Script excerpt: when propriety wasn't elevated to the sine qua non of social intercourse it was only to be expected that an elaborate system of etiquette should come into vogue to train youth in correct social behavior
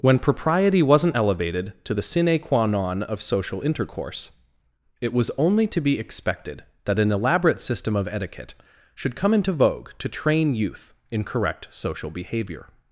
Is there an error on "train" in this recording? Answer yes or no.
no